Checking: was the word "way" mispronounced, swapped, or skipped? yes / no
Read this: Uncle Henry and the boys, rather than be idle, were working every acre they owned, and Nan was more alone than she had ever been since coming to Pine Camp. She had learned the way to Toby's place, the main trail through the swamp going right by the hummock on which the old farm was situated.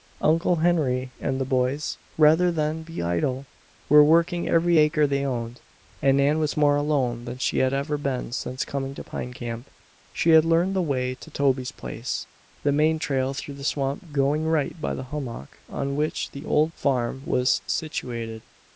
no